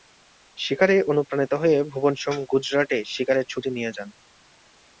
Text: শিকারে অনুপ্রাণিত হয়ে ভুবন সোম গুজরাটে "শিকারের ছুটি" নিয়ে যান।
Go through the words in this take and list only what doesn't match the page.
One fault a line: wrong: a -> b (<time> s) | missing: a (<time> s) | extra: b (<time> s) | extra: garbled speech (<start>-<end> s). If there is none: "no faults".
no faults